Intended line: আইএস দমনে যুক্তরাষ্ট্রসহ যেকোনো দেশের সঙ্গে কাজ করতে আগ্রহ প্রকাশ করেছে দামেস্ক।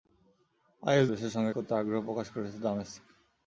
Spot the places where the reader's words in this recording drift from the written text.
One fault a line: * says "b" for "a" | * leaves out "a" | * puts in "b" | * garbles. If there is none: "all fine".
* leaves out "দমনে যুক্তরাষ্ট্রসহ যেকোনো"
* leaves out "কাজ"